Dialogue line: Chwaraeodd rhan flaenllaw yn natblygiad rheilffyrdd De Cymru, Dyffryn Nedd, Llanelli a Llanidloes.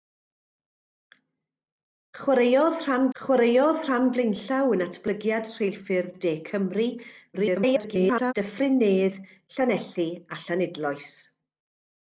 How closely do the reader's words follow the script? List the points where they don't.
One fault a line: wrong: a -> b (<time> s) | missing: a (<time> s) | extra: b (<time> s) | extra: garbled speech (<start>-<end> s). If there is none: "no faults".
extra: chwaraeodd rhan (3.2 s)
extra: garbled speech (7.3-8.3 s)